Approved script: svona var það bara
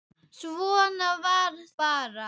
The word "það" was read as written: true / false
false